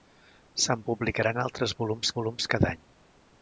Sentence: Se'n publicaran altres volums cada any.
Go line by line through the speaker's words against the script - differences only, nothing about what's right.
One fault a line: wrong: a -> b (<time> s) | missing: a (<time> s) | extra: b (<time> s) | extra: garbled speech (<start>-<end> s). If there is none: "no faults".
extra: volums (2.2 s)